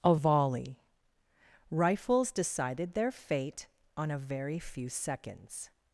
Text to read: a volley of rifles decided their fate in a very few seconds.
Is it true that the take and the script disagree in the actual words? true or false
true